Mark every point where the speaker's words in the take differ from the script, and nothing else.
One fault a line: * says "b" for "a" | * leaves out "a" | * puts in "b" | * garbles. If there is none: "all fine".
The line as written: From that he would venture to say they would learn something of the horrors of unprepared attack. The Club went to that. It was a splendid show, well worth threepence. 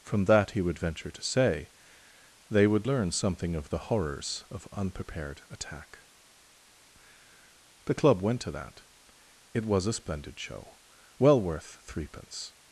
all fine